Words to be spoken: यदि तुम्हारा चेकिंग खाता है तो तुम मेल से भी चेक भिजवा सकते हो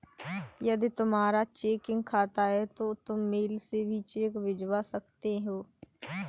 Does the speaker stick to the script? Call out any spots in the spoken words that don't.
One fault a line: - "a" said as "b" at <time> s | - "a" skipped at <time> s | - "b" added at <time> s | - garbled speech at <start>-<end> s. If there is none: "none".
none